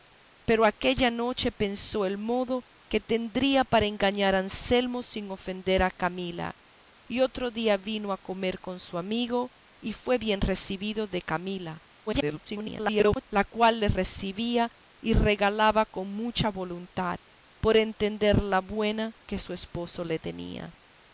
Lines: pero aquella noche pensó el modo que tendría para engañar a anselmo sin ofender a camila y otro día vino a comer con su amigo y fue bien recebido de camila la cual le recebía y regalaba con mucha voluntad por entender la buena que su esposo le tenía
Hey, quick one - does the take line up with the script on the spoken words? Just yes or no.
no